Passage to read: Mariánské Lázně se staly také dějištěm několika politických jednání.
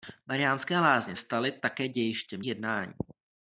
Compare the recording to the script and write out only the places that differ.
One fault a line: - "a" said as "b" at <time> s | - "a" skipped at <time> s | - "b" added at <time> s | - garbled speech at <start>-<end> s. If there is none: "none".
- "se" skipped at 1.1 s
- "několika politických" skipped at 2.4 s